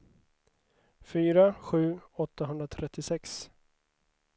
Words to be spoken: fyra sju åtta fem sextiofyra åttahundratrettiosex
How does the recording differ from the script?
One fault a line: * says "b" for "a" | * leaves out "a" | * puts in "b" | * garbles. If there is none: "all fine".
* leaves out "åtta fem sextiofyra"